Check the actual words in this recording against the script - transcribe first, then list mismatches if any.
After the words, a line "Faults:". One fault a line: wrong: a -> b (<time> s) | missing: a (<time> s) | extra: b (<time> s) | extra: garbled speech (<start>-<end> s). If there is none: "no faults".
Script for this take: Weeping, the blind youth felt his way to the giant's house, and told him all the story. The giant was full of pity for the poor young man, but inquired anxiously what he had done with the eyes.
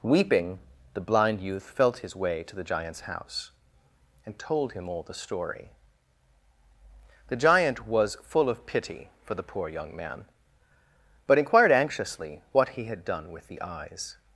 Weeping, the blind youth felt his way to the giant's house, and told him all the story. The giant was full of pity for the poor young man, but inquired anxiously what he had done with the eyes.
Faults:
no faults